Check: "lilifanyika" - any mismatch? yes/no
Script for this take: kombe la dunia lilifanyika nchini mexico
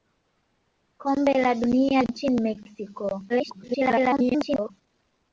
yes